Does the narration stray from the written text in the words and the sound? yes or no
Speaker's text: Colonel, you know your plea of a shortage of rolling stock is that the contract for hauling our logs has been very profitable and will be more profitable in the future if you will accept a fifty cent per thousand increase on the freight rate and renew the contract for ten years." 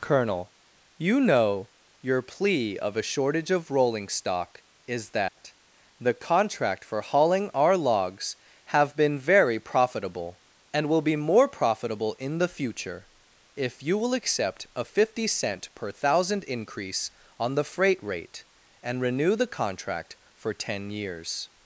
yes